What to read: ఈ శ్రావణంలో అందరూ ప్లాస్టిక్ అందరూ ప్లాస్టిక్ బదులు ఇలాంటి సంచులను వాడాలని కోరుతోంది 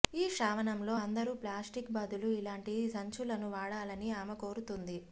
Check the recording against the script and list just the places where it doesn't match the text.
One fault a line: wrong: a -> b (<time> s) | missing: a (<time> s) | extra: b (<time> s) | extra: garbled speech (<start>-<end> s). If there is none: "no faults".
missing: అందరూ ప్లాస్టిక్ (1.9 s)
extra: ఆమె (4.2 s)